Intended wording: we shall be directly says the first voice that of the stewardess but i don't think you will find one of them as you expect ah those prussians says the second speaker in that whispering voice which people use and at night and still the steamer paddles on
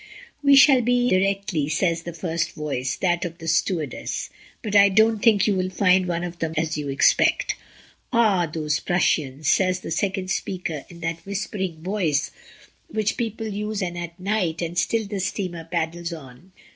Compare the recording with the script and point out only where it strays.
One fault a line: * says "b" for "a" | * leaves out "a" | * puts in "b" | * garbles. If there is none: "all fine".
all fine